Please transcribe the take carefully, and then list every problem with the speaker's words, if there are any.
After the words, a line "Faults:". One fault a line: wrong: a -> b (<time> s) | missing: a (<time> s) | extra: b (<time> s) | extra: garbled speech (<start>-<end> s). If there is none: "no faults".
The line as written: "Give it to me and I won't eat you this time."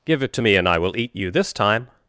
"Give it to me and I will eat you this time."
Faults:
wrong: won't -> will (0.8 s)